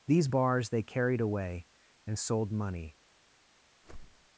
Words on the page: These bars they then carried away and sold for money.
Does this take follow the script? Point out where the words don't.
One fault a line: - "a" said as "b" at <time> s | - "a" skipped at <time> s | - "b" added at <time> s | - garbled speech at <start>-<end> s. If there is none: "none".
- "then" skipped at 0.8 s
- "for" skipped at 2.5 s